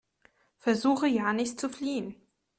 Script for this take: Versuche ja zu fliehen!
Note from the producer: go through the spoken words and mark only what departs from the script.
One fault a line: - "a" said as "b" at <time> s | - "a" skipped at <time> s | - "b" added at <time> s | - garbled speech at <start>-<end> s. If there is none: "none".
- "nicht" added at 1.3 s